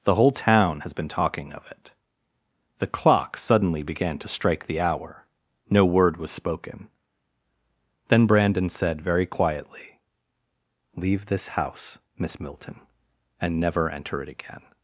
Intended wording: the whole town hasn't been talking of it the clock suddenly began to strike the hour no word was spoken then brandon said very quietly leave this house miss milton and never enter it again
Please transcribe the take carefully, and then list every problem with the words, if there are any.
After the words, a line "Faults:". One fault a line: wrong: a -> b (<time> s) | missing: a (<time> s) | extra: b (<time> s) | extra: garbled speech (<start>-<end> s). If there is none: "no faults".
the whole town has been talking of it the clock suddenly began to strike the hour no word was spoken then brandon said very quietly leave this house miss milton and never enter it again
Faults:
wrong: hasn't -> has (0.8 s)